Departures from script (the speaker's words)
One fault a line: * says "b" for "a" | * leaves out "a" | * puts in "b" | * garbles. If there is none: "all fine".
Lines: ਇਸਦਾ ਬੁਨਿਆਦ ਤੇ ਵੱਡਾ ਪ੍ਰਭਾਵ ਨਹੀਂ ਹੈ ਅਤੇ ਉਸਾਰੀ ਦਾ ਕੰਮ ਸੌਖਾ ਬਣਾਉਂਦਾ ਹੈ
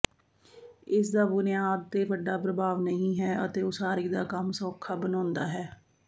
all fine